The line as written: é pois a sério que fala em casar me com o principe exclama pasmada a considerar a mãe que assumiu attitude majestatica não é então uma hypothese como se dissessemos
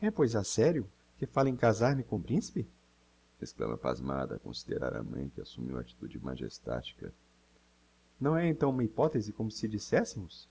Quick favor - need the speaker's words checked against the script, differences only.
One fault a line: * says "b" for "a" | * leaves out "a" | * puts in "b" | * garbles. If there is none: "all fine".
all fine